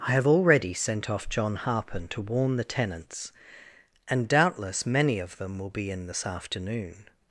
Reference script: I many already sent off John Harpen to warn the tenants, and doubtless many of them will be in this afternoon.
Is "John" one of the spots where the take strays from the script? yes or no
no